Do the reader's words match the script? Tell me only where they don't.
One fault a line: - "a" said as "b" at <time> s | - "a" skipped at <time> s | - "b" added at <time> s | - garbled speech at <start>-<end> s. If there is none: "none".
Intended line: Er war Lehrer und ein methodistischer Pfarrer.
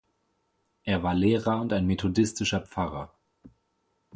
none